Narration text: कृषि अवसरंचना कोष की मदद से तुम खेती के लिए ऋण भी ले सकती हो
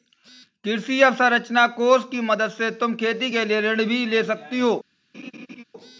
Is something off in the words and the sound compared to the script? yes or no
yes